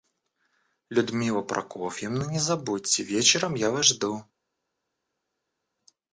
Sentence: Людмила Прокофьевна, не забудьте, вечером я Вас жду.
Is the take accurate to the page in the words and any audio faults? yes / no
yes